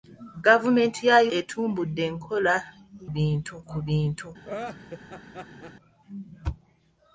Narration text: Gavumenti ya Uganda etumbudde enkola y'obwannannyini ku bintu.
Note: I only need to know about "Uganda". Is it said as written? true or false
false